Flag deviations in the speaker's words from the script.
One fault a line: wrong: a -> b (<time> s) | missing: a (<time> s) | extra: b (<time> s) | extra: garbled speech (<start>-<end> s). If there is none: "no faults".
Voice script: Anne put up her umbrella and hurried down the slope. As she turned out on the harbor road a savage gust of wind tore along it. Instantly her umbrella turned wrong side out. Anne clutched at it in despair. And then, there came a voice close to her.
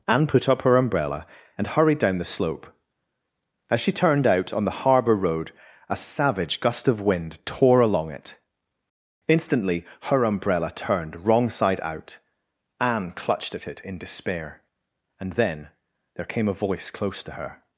no faults